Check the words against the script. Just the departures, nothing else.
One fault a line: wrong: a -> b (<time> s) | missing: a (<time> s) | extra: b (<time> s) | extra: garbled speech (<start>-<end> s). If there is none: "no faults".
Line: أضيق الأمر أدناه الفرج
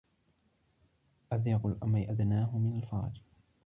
extra: من (2.6 s)